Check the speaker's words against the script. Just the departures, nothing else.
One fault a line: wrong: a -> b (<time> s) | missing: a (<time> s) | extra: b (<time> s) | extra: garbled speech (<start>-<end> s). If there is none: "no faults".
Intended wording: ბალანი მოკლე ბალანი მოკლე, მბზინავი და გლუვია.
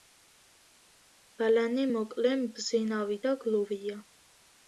missing: ბალანი მოკლე (2.3 s)